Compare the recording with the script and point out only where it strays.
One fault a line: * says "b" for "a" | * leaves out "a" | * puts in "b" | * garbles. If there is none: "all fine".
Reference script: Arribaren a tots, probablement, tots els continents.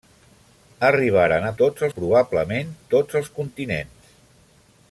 all fine